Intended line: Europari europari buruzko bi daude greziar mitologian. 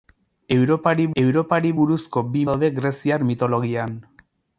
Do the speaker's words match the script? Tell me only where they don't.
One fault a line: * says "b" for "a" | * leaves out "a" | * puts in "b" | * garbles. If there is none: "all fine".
all fine